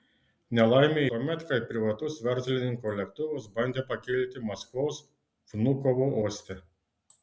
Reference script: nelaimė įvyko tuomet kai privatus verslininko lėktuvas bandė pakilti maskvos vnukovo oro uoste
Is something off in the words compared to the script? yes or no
yes